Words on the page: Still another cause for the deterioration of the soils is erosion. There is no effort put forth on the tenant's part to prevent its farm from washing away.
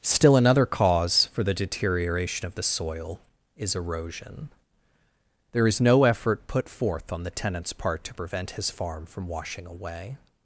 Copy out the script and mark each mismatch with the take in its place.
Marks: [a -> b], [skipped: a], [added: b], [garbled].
Still another cause for the deterioration of the [soils -> soil] is erosion. There is no effort put forth on the tenant's part to prevent [its -> his] farm from washing away.